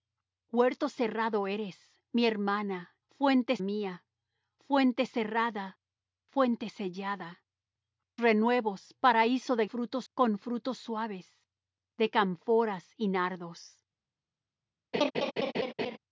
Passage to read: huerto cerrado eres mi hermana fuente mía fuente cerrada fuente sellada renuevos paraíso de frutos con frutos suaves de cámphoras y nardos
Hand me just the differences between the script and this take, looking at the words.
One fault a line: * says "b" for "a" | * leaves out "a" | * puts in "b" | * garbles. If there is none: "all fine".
all fine